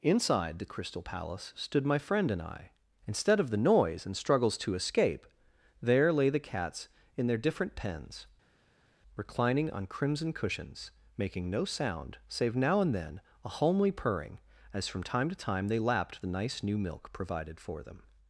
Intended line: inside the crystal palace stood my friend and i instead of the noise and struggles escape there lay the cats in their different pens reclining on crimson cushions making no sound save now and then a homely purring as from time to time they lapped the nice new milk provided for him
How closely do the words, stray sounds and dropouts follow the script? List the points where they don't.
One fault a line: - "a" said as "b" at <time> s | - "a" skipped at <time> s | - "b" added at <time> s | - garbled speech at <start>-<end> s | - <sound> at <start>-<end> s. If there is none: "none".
- "to" added at 4.6 s
- "him" said as "them" at 17.8 s